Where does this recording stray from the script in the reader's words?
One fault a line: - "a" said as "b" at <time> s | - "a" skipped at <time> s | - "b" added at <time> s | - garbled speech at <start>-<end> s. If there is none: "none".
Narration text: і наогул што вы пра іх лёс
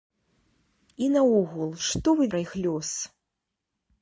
none